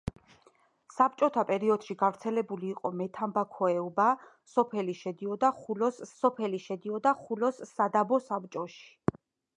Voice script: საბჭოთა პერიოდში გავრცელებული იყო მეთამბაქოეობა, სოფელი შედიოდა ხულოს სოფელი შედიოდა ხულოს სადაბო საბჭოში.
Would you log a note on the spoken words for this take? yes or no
no